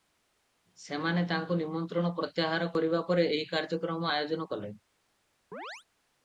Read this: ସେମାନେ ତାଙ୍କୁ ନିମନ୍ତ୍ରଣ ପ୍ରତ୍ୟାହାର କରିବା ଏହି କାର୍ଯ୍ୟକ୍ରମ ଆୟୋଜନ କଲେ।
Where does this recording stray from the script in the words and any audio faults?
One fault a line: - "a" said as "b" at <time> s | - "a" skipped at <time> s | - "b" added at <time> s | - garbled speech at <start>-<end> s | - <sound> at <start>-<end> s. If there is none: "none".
- "ପରେ" added at 3.1 s
- chirp at 5.5-5.8 s